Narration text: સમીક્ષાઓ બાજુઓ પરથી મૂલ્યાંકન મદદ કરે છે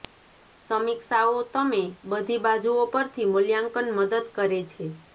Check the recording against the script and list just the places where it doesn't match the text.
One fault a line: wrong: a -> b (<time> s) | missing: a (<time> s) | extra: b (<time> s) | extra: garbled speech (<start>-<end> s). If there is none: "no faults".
extra: તમે બધી (1.5 s)